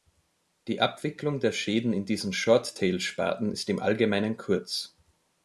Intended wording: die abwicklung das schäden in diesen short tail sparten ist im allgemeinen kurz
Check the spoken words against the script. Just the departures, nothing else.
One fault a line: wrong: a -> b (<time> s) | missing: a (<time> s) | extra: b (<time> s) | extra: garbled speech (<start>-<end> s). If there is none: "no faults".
wrong: das -> der (1.4 s)